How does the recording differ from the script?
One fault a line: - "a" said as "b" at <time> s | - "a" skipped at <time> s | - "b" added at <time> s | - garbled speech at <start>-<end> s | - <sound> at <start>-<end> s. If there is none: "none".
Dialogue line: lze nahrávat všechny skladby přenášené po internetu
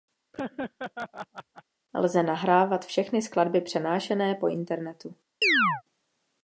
- laugh at 0.3-1.6 s
- chirp at 5.4-5.8 s